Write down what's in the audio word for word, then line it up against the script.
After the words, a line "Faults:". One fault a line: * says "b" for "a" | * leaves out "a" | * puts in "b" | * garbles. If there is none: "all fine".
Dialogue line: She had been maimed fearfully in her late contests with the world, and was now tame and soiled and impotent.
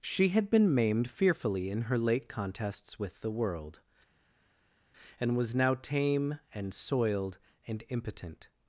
She had been maimed fearfully in her late contests with the world, and was now tame and soiled and impotent.
Faults:
all fine